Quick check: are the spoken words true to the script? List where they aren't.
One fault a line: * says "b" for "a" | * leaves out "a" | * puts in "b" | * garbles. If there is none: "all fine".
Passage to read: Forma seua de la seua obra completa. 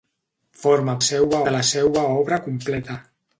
all fine